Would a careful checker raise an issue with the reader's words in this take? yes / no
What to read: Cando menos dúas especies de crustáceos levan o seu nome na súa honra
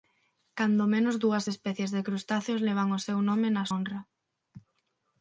yes